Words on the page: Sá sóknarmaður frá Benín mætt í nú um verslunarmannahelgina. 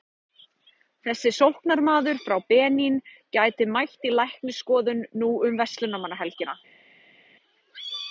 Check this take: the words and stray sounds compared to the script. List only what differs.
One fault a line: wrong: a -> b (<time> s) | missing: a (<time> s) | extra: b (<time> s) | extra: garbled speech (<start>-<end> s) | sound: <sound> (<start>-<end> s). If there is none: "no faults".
wrong: Sá -> Þessi (1.1 s)
extra: gæti (3.4 s)
extra: læknisskoðun (4.2 s)